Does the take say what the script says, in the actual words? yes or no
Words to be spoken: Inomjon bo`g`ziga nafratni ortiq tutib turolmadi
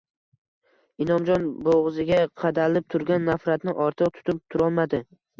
no